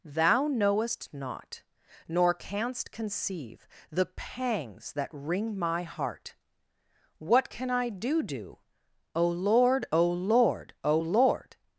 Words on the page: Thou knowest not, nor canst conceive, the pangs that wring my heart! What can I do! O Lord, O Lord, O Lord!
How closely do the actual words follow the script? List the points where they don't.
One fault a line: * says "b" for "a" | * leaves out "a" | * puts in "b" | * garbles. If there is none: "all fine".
* puts in "do"